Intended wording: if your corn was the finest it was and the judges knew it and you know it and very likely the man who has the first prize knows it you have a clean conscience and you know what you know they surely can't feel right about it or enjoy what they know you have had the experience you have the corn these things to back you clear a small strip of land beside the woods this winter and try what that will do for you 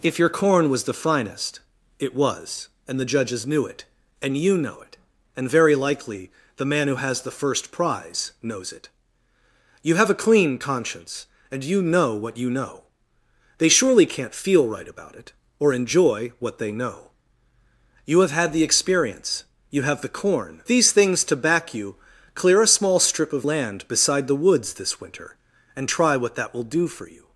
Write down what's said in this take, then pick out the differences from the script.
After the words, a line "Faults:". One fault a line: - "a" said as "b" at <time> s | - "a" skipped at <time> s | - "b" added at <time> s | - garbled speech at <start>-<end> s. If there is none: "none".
if your corn was the finest it was and the judges knew it and you know it and very likely the man who has the first prize knows it you have a clean conscience and you know what you know they surely can't feel right about it or enjoy what they know you have had the experience you have the corn these things to back you clear a small strip of land beside the woods this winter and try what that will do for you
Faults:
none